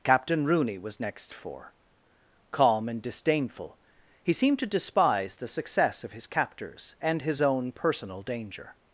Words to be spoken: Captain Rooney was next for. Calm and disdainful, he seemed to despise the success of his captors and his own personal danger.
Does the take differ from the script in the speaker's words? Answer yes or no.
no